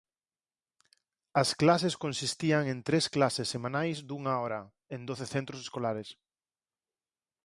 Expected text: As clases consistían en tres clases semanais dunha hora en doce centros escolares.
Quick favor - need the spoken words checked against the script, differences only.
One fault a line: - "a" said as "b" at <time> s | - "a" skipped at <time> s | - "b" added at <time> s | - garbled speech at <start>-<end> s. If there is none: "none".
none